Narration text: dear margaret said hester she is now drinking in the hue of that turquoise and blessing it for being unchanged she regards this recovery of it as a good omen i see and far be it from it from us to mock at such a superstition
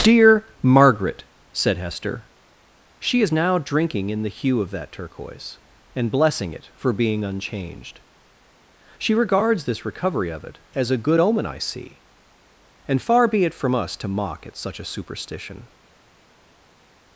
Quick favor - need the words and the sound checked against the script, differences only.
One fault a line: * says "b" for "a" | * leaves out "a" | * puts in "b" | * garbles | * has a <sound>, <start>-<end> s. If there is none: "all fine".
* leaves out "it from"